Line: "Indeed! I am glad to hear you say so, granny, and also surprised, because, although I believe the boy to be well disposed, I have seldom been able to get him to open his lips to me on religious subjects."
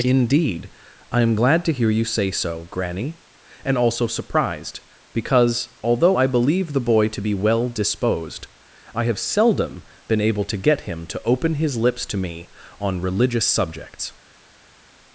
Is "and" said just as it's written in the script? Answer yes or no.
yes